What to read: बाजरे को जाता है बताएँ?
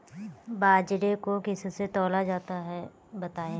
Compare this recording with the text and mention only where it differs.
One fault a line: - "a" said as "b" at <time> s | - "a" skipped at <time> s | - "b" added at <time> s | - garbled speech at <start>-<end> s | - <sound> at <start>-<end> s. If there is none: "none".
- "किससे तौला" added at 1.4 s